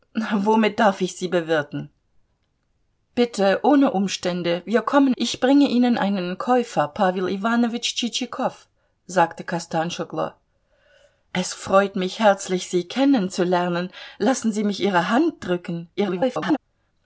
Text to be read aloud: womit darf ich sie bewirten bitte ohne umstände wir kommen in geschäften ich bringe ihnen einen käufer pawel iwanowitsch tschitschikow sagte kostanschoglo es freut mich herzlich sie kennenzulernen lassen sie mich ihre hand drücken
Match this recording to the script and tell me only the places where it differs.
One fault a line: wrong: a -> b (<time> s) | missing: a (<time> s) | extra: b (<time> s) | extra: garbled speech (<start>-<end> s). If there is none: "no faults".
missing: in geschäften (5.1 s)
extra: garbled speech (16.0-16.6 s)